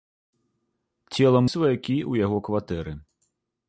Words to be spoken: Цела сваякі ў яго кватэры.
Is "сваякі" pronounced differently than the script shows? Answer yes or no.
no